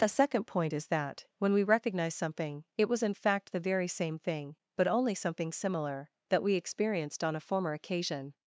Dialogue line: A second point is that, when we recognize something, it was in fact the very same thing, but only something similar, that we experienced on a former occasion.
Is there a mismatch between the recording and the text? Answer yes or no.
no